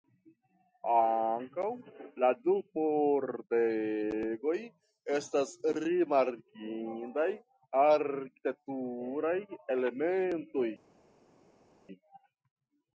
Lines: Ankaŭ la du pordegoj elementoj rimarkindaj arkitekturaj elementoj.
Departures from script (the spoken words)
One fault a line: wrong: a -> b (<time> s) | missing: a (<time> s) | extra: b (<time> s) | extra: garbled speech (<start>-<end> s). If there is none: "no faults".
wrong: elementoj -> estas (5.2 s)